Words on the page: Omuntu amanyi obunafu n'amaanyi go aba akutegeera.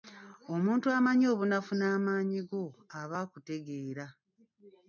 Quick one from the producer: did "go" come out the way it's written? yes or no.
yes